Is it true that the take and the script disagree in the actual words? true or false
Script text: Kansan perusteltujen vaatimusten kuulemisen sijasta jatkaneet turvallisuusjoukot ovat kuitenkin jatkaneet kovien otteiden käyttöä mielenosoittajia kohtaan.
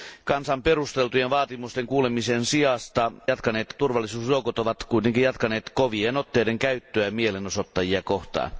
false